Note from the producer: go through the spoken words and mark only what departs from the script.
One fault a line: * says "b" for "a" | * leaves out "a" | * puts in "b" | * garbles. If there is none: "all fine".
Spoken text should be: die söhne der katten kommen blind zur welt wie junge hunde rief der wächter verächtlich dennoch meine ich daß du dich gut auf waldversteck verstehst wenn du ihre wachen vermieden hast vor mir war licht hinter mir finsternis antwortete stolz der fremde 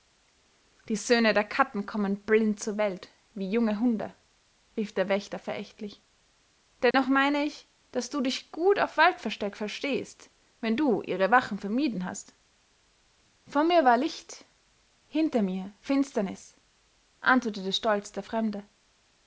all fine